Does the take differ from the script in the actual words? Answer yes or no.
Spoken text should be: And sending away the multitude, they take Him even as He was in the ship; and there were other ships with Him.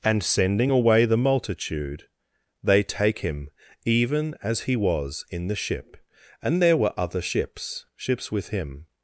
yes